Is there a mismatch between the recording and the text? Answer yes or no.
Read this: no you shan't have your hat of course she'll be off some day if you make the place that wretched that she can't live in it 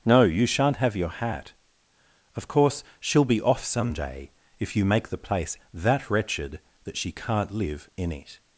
no